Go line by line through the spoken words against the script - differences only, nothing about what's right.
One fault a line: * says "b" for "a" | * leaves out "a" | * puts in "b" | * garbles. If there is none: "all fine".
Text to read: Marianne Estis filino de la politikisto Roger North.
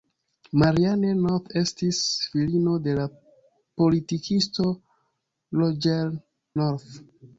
* puts in "North"